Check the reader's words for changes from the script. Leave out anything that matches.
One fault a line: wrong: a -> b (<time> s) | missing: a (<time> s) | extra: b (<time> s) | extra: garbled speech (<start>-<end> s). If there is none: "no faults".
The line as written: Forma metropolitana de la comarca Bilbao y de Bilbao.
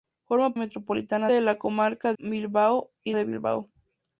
no faults